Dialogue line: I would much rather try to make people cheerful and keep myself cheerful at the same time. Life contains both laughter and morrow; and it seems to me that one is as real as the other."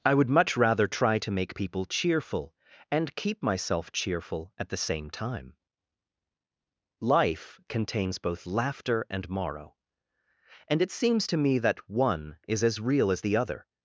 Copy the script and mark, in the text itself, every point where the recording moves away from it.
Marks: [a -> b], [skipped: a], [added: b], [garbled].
I would much rather try to make people cheerful and keep myself cheerful at the same time. Life contains both laughter and morrow; and it seems to me that one is as real as the other."